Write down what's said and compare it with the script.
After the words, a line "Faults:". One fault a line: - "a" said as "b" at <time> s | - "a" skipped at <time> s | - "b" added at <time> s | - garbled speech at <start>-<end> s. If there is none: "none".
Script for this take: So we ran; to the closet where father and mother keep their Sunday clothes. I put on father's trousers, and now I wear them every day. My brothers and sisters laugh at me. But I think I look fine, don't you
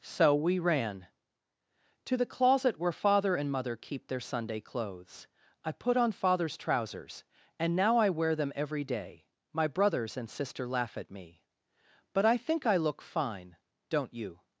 So we ran; to the closet where father and mother keep their Sunday clothes. I put on father's trousers, and now I wear them every day. My brothers and sister laugh at me. But I think I look fine, don't you
Faults:
- "sisters" said as "sister" at 10.3 s